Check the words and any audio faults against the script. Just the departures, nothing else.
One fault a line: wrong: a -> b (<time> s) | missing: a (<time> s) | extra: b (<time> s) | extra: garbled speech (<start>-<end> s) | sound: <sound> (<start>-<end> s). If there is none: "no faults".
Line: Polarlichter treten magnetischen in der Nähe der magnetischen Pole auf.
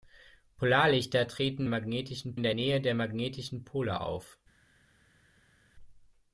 no faults